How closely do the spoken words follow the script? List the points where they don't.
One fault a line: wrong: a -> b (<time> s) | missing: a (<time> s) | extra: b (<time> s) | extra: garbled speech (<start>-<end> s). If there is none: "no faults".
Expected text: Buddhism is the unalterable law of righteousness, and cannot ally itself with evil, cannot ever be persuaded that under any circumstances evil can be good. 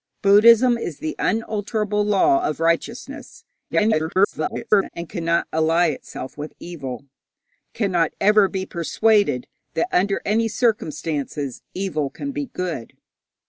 extra: garbled speech (3.7-4.9 s)